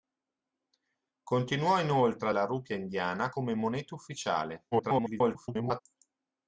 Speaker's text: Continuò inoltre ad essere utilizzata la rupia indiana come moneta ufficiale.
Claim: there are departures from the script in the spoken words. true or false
true